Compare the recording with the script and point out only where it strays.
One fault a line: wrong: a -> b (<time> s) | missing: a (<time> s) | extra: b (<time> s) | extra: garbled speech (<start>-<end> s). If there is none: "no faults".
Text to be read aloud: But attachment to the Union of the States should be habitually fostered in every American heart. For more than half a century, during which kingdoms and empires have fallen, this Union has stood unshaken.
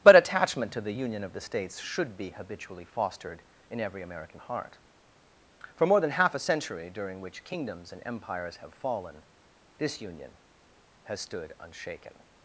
no faults